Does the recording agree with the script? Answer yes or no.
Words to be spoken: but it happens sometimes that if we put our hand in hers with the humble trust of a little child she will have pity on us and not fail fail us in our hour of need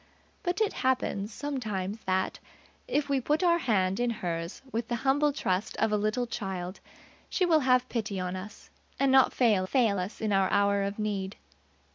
yes